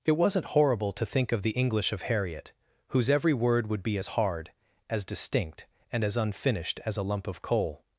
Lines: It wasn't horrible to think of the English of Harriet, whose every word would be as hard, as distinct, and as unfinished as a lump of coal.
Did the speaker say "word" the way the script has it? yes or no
yes